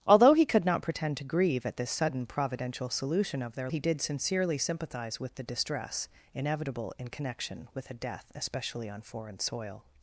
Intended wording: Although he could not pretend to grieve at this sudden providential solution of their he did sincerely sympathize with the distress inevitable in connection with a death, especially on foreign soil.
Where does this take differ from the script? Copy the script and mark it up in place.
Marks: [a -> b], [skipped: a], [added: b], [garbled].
Although he could not pretend to grieve at this sudden providential solution of their he did sincerely sympathize with the distress inevitable in connection with a death, especially on foreign soil.